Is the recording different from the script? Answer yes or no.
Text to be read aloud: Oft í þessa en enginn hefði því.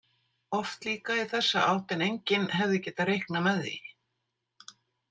yes